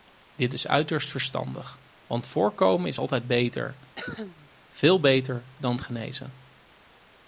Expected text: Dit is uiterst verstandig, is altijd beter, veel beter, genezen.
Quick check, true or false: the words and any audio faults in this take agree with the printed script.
false